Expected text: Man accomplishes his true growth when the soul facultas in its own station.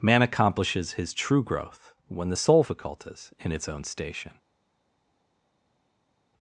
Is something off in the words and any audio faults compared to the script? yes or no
no